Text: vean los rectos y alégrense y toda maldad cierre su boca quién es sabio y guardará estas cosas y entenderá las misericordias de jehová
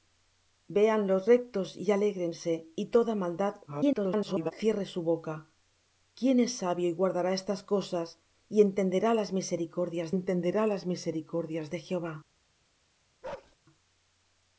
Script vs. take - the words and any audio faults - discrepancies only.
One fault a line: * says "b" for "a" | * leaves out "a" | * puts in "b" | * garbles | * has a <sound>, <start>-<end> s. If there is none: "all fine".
* garbles
* puts in "entenderá las misericordias"
* has a bark, 13.2-13.6 s